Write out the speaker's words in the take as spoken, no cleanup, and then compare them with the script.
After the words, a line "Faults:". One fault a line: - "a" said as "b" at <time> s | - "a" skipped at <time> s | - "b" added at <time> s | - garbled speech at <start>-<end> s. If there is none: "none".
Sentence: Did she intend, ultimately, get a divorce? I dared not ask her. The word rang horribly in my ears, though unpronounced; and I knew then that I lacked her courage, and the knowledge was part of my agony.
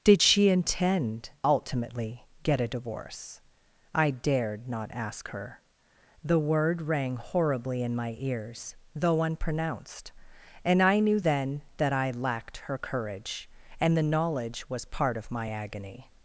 Did she intend, ultimately, get a divorce? I dared not ask her. The word rang horribly in my ears, though unpronounced; and I knew then that I lacked her courage, and the knowledge was part of my agony.
Faults:
none